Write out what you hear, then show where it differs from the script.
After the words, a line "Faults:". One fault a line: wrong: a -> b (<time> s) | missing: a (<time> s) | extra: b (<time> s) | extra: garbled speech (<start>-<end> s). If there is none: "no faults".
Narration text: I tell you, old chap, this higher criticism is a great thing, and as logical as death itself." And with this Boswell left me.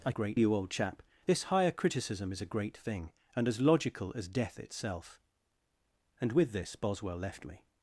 I great you, old chap, this higher criticism is a great thing, and as logical as death itself." And with this Boswell left me.
Faults:
wrong: tell -> great (0.1 s)